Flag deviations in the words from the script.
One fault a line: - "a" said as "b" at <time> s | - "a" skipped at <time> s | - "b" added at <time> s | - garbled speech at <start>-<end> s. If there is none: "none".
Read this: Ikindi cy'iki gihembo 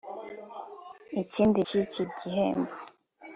none